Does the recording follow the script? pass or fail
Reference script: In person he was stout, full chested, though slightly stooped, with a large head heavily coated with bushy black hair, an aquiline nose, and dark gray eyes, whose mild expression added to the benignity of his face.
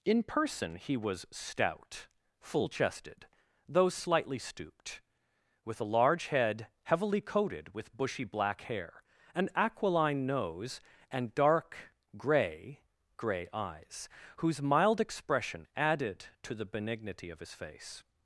fail